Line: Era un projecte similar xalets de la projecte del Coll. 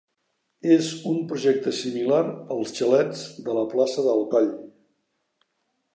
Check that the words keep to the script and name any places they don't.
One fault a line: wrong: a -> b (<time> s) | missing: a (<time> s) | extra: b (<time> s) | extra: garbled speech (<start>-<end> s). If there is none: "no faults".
wrong: Era -> És (0.8 s)
extra: als (2.6 s)
wrong: projecte -> plaça (3.7 s)